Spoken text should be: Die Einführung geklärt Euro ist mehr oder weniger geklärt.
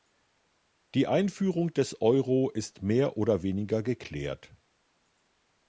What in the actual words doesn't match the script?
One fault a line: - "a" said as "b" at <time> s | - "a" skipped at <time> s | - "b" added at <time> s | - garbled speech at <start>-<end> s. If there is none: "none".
- "geklärt" said as "des" at 1.8 s